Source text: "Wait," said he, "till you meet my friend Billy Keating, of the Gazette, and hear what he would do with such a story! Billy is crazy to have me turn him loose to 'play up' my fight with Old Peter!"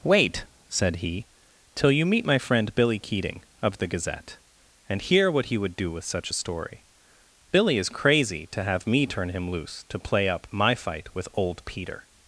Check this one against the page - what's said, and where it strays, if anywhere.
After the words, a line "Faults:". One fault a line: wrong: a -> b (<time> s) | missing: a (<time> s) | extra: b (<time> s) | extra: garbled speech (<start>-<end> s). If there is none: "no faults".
"Wait," said he, "till you meet my friend Billy Keating, of the Gazette, and hear what he would do with such a story! Billy is crazy to have me turn him loose to 'play up' my fight with Old Peter!"
Faults:
no faults